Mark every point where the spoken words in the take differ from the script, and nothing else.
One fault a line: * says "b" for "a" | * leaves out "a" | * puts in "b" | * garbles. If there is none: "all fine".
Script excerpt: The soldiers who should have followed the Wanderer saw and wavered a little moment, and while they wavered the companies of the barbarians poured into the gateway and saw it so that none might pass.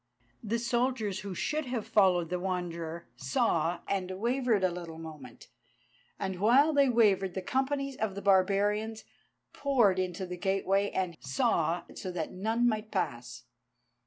all fine